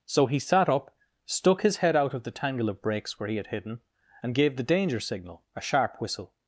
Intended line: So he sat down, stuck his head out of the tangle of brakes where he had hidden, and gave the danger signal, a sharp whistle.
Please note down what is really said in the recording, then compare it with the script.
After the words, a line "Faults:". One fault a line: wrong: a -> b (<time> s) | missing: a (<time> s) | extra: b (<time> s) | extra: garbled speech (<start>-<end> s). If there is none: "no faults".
So he sat up, stuck his head out of the tangle of brakes where he had hidden, and gave the danger signal, a sharp whistle.
Faults:
wrong: down -> up (0.7 s)